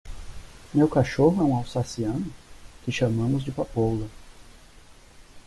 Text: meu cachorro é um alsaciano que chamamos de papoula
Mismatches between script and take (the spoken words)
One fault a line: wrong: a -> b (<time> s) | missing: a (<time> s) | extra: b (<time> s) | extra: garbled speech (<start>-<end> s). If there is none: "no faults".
no faults